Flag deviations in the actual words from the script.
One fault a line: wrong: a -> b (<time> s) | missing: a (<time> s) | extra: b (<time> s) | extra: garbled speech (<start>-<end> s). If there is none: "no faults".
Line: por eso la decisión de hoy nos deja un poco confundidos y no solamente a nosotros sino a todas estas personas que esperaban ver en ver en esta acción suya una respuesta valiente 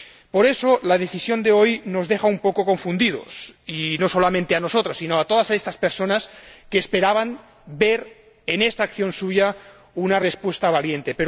missing: ver en (8.6 s)